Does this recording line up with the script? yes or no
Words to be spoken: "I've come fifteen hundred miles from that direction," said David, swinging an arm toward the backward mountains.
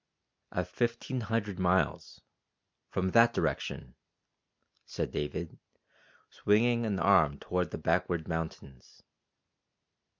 no